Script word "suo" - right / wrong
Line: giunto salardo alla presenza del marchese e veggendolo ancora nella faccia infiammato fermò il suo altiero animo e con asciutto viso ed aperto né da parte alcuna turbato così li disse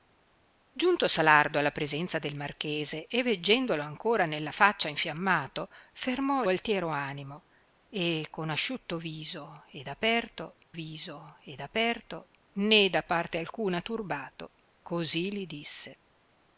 wrong